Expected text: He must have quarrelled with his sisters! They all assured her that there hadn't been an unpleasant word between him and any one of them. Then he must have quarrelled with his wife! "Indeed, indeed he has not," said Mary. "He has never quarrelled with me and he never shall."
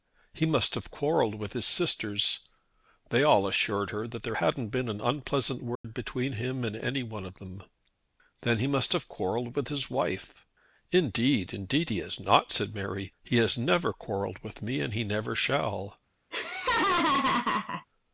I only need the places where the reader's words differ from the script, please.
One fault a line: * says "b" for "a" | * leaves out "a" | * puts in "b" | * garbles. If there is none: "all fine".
all fine